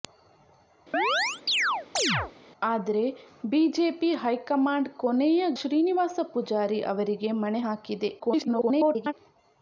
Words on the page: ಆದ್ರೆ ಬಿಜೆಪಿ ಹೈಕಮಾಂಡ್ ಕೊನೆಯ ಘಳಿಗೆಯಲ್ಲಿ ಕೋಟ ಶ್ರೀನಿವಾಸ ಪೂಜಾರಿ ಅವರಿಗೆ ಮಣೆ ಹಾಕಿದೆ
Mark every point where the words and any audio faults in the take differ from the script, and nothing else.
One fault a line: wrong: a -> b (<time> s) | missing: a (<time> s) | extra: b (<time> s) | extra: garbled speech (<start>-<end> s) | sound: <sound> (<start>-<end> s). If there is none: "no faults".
sound: chirp (0.9-2.3 s)
missing: ಘಳಿಗೆಯಲ್ಲಿ ಕೋಟ (5.4 s)
extra: garbled speech (8.2-9.1 s)